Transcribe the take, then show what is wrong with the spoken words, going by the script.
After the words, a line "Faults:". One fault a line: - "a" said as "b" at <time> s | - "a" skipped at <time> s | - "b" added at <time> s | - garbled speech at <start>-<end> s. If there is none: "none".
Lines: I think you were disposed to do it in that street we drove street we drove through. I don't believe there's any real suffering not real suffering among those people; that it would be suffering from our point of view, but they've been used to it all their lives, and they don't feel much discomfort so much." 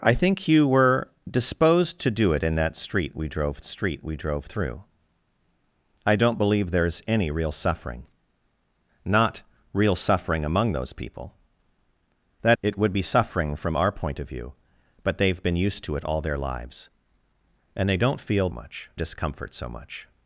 I think you were disposed to do it in that street we drove street we drove through. I don't believe there's any real suffering not real suffering among those people; that it would be suffering from our point of view, but they've been used to it all their lives, and they don't feel much discomfort so much."
Faults:
none